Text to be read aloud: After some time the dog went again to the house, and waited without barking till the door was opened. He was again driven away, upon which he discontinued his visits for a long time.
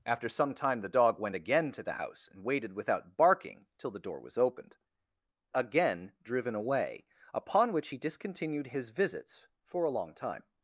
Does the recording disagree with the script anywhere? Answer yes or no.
yes